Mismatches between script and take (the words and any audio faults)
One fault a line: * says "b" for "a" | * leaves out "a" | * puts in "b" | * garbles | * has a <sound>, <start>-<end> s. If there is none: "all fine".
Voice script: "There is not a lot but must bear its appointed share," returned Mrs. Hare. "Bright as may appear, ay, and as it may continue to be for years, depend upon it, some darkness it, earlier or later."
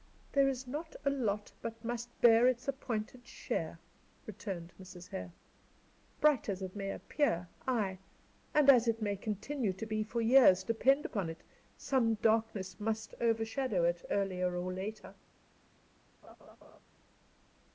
* puts in "it"
* puts in "must overshadow"
* has a laugh, 16.2-16.8 s